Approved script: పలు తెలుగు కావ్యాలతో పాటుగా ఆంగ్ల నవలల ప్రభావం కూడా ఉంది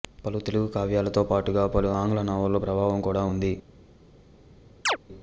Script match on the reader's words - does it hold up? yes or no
no